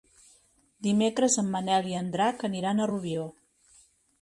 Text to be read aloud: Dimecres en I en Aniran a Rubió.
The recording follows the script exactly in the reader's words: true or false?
false